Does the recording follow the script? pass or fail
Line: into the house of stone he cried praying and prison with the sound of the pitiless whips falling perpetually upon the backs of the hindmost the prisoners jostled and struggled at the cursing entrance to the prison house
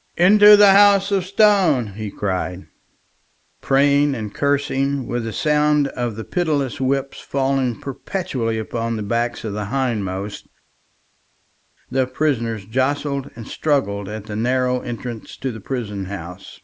fail